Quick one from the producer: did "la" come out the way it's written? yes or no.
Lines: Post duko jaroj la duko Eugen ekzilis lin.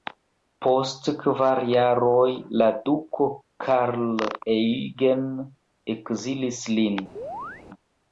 yes